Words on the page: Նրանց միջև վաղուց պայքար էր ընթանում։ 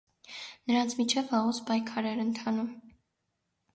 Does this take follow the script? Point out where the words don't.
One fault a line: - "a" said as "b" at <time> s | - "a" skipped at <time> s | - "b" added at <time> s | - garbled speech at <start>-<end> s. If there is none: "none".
none